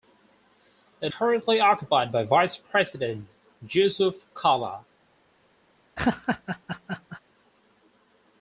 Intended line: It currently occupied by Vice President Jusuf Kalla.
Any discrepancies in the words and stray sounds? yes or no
yes